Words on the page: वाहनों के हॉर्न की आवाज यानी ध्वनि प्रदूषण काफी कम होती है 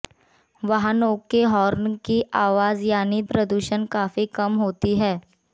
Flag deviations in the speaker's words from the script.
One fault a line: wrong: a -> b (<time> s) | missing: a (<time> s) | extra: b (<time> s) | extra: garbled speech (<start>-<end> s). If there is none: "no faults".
missing: ध्वनि (3.2 s)